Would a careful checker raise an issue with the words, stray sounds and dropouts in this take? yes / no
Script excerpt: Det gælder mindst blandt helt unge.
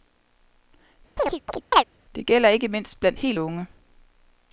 yes